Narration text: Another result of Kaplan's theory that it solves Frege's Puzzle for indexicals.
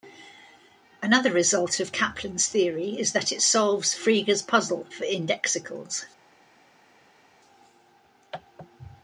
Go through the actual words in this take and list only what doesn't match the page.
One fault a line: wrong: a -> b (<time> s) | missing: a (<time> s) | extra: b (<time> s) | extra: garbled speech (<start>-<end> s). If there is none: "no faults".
extra: is (3.0 s)